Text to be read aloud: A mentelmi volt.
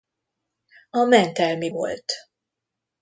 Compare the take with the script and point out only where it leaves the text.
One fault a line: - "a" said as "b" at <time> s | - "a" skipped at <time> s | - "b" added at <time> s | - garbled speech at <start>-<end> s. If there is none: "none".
none